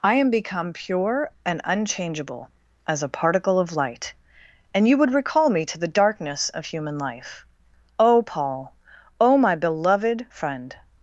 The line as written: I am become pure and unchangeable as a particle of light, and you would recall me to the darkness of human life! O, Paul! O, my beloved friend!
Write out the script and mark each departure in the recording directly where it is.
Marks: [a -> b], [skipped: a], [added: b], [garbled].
I am become pure and unchangeable as a particle of light, and you would recall me to the darkness of human life! O, Paul! O, my beloved friend!